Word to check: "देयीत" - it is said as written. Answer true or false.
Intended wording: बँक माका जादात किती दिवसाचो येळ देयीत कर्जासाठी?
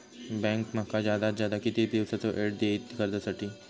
true